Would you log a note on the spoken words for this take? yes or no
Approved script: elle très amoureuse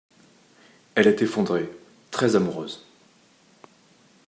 yes